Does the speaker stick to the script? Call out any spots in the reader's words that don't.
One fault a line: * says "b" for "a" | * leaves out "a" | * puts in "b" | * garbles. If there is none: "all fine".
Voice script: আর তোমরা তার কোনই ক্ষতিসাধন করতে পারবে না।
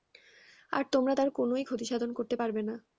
all fine